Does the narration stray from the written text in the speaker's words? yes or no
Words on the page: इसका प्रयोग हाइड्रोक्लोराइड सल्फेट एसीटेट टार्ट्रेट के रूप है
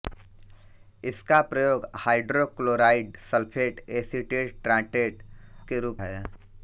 no